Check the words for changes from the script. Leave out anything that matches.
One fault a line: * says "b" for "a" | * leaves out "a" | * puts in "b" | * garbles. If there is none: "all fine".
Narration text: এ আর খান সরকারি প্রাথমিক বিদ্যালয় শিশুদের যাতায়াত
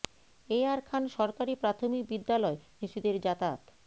all fine